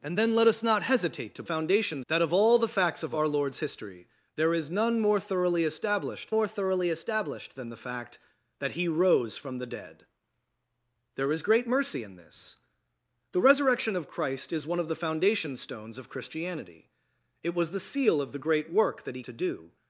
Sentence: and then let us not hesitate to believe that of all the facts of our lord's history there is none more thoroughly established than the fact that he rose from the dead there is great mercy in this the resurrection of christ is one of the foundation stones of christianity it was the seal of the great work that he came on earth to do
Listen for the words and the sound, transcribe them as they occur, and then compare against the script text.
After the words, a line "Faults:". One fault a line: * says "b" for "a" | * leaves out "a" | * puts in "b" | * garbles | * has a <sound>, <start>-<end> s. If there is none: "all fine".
and then let us not hesitate to foundation that of all the facts of our lord's history there is none more thoroughly established more thoroughly established than the fact that he rose from the dead there is great mercy in this the resurrection of christ is one of the foundation stones of christianity it was the seal of the great work that he to do
Faults:
* says "foundation" for "believe"
* puts in "more thoroughly established"
* leaves out "came on earth"